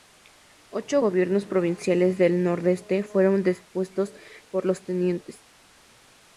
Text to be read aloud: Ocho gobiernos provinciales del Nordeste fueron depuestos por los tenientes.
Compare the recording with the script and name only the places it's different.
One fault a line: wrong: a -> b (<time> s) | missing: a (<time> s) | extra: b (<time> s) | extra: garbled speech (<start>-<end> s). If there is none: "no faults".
no faults